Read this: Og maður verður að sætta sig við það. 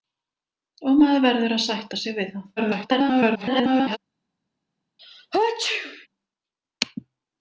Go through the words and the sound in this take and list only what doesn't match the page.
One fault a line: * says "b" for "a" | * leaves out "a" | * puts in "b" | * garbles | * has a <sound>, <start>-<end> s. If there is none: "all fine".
* garbles
* has a sneeze, 5.0-6.1 s